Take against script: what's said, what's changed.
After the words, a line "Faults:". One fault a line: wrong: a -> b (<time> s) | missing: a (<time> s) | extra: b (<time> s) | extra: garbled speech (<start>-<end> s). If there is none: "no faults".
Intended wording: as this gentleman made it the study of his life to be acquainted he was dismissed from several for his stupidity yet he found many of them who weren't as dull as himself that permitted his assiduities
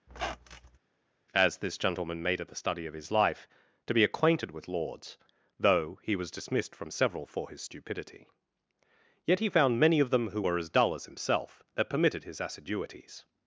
as this gentleman made it the study of his life to be acquainted with lords though he was dismissed from several for his stupidity yet he found many of them who were as dull as himself that permitted his assiduities
Faults:
extra: with lords though (4.5 s)
wrong: weren't -> were (10.4 s)